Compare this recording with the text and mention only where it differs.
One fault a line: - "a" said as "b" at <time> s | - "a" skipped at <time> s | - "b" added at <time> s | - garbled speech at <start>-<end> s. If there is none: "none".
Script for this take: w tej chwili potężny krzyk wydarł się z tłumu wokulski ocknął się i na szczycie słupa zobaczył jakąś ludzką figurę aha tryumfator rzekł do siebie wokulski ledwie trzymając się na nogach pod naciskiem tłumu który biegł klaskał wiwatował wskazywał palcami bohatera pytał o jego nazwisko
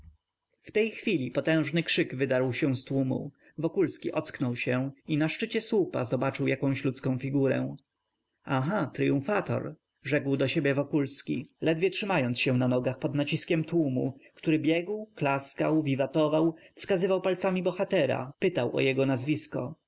none